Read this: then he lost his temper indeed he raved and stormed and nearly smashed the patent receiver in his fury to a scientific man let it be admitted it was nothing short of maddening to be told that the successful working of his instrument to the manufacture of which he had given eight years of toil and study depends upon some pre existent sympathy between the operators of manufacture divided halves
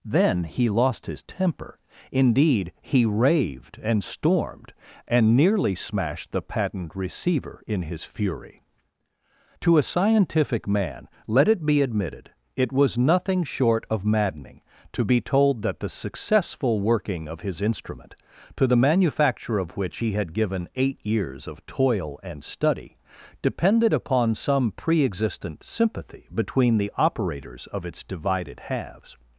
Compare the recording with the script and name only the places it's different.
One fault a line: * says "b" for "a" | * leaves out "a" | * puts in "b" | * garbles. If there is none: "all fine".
* says "depended" for "depends"
* says "its" for "manufacture"